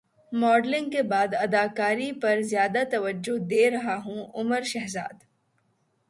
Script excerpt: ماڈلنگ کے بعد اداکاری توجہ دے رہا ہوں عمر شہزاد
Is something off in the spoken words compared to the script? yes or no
yes